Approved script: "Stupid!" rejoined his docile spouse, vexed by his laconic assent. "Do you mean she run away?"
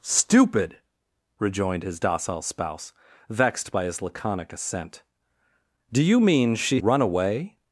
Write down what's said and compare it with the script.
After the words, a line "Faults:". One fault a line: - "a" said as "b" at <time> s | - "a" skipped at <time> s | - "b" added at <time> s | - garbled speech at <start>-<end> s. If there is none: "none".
"Stupid!" rejoined his docile spouse, vexed by his laconic assent. "Do you mean she run away?"
Faults:
none